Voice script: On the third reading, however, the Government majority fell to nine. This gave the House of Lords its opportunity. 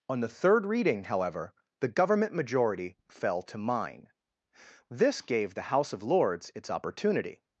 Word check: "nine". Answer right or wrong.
wrong